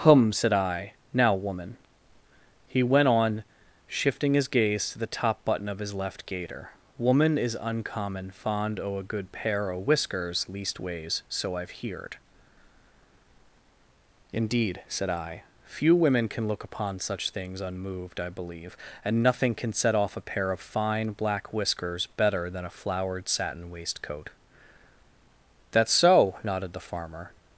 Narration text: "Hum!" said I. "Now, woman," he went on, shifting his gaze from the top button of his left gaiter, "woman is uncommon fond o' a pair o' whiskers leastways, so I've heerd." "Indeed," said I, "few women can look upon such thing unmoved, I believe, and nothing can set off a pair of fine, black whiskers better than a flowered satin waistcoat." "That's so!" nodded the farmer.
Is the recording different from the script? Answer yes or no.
yes